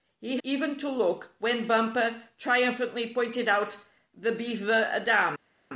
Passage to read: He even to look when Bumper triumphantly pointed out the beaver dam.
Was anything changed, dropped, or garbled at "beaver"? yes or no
no